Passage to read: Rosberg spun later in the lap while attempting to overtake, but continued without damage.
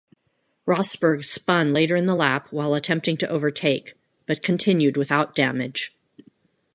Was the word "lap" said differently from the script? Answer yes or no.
no